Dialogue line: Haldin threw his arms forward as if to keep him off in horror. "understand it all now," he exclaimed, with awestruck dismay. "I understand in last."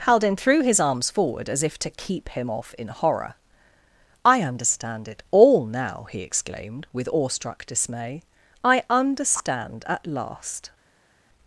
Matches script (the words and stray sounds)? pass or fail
fail